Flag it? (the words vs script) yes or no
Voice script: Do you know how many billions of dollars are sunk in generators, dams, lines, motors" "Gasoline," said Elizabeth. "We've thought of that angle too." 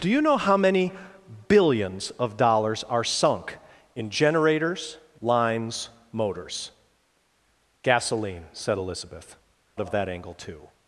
yes